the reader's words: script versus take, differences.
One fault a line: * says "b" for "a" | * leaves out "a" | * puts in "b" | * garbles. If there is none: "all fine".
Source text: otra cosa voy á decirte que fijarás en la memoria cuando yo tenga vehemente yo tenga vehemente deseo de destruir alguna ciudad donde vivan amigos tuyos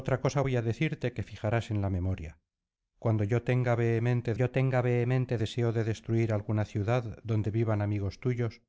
all fine